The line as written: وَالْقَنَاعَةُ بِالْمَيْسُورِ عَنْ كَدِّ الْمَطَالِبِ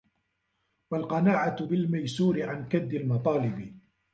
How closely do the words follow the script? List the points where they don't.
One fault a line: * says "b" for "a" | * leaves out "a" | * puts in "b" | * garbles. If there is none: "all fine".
all fine